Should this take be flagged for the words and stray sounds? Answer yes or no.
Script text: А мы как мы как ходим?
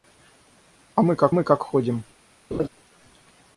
yes